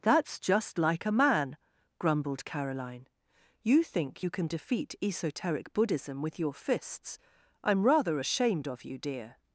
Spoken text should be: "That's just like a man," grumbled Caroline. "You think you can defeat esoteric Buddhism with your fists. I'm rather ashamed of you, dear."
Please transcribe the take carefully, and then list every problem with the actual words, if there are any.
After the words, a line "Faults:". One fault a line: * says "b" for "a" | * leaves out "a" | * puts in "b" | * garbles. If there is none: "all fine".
"That's just like a man," grumbled Caroline. "You think you can defeat esoteric Buddhism with your fists. I'm rather ashamed of you, dear."
Faults:
all fine